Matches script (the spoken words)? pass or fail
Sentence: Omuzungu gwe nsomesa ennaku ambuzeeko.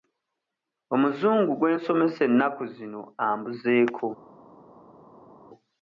fail